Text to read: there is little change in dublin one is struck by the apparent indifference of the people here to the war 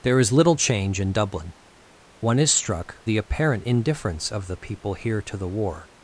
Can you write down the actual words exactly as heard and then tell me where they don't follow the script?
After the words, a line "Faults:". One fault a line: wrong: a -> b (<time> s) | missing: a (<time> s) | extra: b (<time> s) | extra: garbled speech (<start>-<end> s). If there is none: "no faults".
there is little change in dublin one is struck the apparent indifference of the people here to the war
Faults:
missing: by (3.0 s)